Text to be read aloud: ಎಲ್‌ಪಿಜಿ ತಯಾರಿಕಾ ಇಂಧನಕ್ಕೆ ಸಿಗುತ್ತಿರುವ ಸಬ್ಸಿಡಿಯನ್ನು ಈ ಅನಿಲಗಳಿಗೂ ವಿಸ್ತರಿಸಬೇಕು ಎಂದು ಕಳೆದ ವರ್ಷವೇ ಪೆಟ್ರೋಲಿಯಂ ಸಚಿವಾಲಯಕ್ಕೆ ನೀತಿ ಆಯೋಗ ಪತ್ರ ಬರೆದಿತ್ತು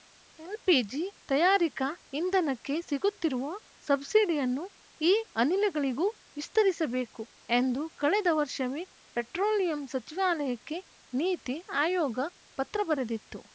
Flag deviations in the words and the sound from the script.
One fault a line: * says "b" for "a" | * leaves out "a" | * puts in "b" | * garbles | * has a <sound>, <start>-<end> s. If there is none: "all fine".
all fine